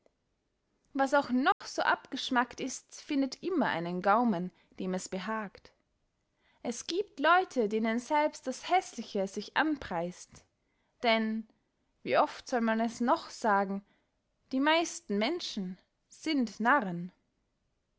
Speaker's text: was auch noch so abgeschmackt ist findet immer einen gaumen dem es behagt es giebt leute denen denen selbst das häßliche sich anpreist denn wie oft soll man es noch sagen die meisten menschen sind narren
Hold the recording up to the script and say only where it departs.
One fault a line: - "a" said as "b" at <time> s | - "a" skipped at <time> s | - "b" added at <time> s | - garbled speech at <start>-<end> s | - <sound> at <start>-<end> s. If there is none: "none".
- dropout at 1.5-1.6 s
- "denen" skipped at 8.0 s